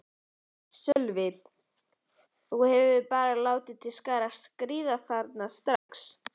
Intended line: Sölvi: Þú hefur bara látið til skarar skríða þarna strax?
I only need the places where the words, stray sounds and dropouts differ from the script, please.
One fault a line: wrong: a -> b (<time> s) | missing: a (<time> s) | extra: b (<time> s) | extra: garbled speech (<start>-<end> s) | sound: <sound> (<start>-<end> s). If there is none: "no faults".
sound: dropout (0.9-1.0 s)
sound: dropout (5.8-5.9 s)